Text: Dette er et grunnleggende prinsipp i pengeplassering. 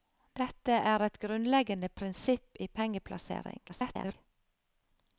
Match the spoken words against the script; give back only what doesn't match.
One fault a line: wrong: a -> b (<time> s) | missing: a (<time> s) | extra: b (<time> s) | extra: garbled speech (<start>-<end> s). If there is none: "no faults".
extra: garbled speech (3.7-4.1 s)